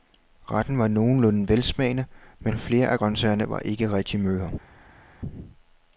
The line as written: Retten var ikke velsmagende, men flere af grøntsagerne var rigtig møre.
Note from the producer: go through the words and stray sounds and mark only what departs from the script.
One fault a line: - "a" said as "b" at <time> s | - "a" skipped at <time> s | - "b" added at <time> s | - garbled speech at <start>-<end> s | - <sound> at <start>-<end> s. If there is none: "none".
- "ikke" said as "nogenlunde" at 0.9 s
- "ikke" added at 3.6 s